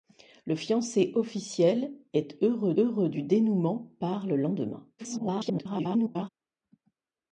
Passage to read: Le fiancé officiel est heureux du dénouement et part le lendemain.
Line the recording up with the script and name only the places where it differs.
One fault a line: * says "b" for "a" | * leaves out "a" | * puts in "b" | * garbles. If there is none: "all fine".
* puts in "heureux"
* leaves out "et"
* garbles